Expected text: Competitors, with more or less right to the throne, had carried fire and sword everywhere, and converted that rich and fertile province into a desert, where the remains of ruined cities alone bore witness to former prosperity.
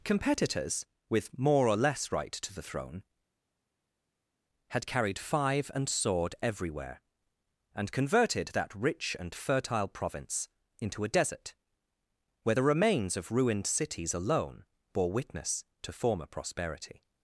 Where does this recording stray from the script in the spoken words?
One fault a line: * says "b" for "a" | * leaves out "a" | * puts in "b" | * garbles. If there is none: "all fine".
* says "five" for "fire"